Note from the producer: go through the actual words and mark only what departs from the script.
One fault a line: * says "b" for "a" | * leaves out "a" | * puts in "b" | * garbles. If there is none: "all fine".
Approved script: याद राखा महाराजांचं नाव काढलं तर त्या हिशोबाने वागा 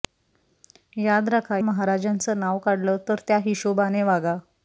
all fine